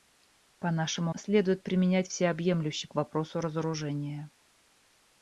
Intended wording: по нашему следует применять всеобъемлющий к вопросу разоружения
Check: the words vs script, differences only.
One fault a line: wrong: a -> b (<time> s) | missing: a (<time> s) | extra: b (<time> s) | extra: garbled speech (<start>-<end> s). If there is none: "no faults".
no faults